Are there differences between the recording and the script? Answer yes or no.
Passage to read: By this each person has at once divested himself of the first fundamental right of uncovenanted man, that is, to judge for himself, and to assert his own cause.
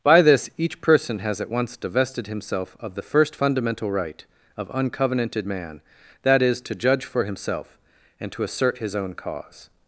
no